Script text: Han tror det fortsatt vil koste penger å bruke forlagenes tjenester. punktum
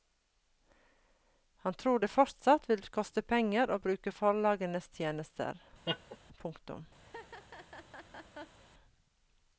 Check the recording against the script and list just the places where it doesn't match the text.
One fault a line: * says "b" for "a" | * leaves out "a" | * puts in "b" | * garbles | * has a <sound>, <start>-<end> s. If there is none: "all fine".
* has a laugh, 5.8-6.2 s
* has a laugh, 7.0-8.6 s